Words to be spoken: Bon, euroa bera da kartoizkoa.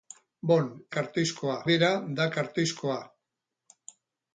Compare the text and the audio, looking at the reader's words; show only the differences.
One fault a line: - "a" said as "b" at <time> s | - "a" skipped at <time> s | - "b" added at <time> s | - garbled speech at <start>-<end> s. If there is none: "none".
- "euroa" said as "kartoizkoa" at 0.9 s